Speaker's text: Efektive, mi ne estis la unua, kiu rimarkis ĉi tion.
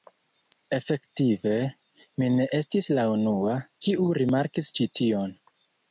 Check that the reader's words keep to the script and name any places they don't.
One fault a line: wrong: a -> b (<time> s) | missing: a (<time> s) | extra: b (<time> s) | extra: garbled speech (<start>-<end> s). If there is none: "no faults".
no faults